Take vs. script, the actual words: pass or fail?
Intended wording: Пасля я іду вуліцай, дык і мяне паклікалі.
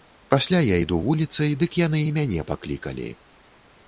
fail